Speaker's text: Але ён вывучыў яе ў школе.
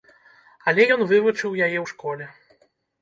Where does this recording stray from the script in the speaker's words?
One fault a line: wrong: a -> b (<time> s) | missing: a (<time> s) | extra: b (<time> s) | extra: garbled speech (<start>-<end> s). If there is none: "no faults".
no faults